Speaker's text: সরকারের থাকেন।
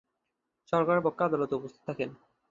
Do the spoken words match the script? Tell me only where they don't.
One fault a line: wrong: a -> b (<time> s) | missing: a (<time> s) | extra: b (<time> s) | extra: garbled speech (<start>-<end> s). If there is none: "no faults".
extra: পক্ষে আদালতে উপস্থিত (1.0 s)